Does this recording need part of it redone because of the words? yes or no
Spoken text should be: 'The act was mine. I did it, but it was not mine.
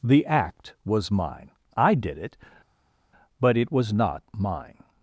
no